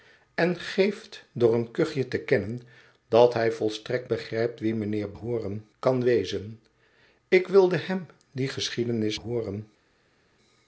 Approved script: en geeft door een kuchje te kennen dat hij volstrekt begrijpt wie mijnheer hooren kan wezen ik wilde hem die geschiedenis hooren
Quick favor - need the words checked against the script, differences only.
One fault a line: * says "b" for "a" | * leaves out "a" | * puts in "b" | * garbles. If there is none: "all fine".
all fine